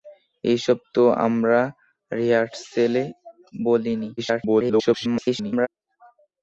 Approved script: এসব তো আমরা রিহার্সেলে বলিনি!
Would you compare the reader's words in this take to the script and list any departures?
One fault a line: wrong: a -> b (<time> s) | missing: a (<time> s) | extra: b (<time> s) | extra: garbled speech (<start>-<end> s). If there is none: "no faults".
extra: garbled speech (4.2-5.7 s)